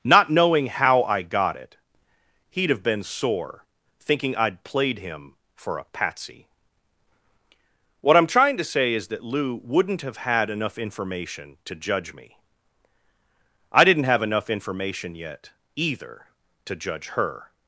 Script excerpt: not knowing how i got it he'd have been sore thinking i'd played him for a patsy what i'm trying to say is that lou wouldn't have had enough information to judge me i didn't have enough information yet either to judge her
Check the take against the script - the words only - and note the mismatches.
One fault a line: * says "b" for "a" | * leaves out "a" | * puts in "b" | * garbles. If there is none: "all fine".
all fine